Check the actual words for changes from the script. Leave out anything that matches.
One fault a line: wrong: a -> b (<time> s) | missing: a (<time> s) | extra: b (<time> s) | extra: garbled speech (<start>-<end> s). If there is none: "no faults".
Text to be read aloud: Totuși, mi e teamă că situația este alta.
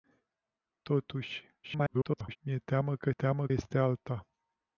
extra: garbled speech (1.6-2.4 s)
wrong: situația -> teamă (3.1 s)